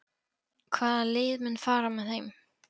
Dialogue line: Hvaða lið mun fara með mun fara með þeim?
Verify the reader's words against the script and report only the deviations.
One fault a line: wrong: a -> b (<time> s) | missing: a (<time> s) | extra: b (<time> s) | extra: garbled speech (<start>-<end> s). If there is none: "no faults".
missing: mun fara með (2.1 s)